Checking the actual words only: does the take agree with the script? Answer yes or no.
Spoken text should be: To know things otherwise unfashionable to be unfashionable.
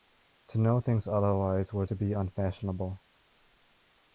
no